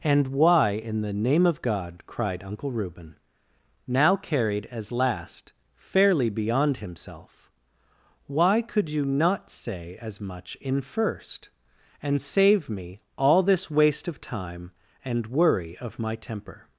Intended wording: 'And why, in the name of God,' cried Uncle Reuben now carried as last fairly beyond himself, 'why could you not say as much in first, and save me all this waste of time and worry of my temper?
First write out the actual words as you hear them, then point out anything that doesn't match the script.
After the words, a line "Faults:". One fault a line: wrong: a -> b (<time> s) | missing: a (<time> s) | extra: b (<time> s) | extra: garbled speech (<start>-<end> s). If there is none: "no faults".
'And why, in the name of God,' cried Uncle Reuben now carried as last fairly beyond himself, 'why could you not say as much in first, and save me all this waste of time and worry of my temper?
Faults:
no faults